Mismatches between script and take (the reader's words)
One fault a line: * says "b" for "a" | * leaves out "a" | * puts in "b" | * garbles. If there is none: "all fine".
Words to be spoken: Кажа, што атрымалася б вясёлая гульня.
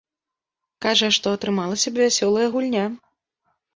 all fine